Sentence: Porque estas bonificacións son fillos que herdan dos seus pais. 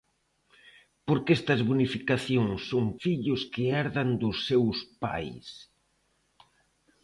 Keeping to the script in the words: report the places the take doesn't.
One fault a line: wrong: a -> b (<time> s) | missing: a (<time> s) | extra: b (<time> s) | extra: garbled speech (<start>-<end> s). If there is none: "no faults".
no faults